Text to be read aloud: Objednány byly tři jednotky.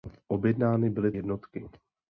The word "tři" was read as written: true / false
false